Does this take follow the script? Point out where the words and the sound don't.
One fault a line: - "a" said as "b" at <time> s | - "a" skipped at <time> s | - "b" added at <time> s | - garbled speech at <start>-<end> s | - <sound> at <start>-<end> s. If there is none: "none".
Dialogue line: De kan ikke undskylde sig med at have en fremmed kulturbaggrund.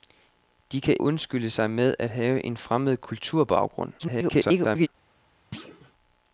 - "ikke" skipped at 1.0 s
- garbled speech at 4.0-4.9 s
- thud at 5.5-5.9 s